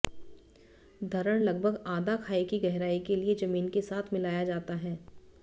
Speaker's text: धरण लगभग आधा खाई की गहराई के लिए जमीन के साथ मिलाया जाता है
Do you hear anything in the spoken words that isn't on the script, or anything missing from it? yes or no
no